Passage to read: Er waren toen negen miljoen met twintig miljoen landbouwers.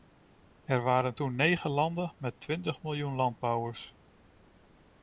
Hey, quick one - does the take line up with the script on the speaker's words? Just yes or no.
no